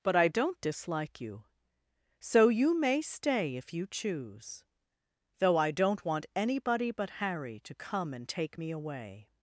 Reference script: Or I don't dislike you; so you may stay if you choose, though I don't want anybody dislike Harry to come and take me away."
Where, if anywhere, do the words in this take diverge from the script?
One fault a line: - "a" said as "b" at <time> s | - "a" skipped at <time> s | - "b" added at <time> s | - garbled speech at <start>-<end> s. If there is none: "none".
- "Or" said as "But" at 0.0 s
- "dislike" said as "but" at 6.9 s